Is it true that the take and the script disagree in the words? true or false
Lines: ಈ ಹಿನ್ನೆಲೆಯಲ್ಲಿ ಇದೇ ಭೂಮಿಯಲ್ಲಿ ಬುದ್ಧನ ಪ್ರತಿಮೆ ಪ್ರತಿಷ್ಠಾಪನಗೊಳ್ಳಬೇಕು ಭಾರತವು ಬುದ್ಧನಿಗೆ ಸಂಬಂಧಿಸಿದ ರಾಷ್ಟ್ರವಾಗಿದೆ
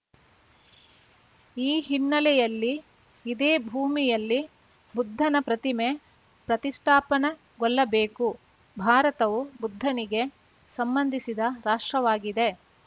false